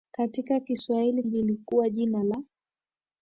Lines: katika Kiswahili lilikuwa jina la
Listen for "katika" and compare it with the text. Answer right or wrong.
right